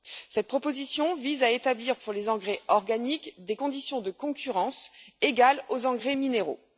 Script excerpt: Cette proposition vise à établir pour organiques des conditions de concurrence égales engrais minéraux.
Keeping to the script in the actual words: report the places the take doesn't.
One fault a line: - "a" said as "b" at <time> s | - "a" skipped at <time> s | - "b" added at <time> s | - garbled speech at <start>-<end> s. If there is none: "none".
- "les engrais" added at 2.1 s
- "aux" added at 5.7 s